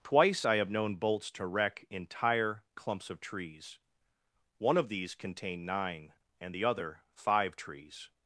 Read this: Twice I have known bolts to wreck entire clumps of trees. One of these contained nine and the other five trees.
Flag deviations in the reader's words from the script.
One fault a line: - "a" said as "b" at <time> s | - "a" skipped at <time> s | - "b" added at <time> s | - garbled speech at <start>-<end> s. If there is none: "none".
none